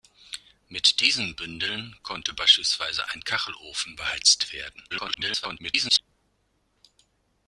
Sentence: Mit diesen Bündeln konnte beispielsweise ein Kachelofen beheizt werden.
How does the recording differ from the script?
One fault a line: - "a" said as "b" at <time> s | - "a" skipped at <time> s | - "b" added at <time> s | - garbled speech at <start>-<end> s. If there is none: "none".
- garbled speech at 4.9-6.0 s